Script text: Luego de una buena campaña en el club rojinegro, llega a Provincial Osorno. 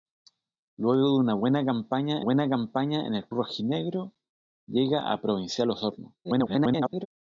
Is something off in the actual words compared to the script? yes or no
yes